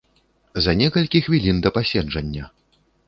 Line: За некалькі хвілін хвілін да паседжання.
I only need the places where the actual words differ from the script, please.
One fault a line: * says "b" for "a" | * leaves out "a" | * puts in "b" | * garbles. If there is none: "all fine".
* leaves out "хвілін"